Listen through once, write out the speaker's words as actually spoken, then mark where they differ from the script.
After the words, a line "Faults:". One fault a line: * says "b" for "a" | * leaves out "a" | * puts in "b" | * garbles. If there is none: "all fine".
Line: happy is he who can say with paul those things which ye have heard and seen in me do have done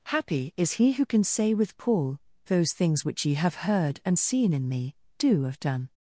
happy is he who can say with paul those things which ye have heard and seen in me do have done
Faults:
all fine